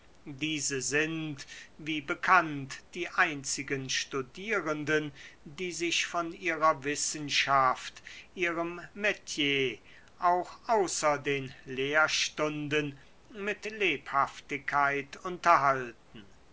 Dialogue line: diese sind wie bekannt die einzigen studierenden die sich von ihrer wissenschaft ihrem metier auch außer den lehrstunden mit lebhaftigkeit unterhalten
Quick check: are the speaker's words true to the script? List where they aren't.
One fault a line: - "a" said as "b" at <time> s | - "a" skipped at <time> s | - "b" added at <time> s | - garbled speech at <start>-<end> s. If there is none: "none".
none